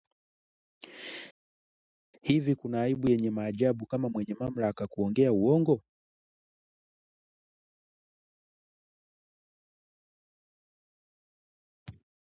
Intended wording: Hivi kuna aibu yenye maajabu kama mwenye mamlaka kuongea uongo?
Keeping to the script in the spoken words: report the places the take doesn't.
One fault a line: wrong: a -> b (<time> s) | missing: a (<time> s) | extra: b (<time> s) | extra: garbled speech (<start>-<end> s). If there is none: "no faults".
no faults